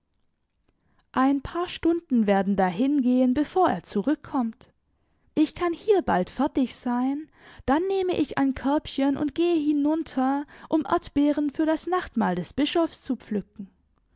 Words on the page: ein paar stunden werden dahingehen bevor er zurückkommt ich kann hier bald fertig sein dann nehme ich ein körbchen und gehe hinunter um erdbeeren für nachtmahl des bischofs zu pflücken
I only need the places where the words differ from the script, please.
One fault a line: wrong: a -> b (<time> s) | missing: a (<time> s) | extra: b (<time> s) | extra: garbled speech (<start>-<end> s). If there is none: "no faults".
extra: das (11.6 s)